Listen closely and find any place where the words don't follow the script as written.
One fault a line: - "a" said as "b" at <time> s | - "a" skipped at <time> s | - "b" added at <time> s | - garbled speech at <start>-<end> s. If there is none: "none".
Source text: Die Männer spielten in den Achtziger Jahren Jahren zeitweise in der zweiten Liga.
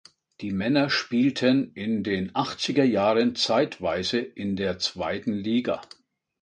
- "Jahren" skipped at 3.4 s